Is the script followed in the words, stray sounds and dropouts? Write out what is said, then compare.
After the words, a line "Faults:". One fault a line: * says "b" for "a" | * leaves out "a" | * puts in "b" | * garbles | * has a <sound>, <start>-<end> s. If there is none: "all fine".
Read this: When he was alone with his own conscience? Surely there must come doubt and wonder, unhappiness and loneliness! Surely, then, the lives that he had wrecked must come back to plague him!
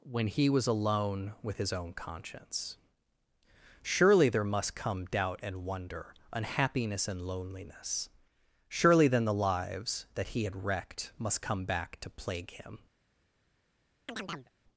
When he was alone with his own conscience? Surely there must come doubt and wonder, unhappiness and loneliness! Surely, then, the lives that he had wrecked must come back to plague him!
Faults:
* has a chirp, 14.1-14.5 s